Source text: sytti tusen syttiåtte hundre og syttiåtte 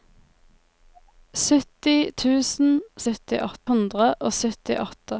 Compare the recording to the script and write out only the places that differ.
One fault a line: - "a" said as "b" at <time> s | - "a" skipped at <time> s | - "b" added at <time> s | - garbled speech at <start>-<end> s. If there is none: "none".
none